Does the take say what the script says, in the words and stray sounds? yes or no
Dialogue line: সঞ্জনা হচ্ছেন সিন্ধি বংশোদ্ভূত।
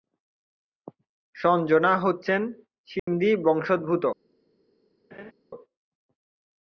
no